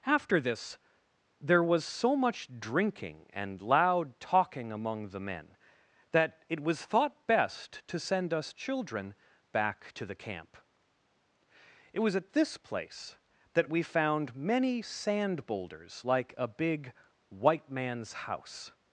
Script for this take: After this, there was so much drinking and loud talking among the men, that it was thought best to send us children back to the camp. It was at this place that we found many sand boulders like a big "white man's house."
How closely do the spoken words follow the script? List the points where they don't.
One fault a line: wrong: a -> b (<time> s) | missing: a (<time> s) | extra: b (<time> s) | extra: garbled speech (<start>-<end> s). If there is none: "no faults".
no faults